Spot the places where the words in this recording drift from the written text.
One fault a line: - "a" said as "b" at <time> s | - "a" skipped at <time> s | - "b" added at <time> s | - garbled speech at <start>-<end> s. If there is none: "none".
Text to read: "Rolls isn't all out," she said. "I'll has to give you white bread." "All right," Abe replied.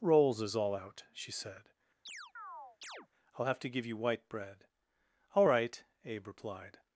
- "isn't" said as "is" at 0.4 s
- "has" said as "have" at 3.4 s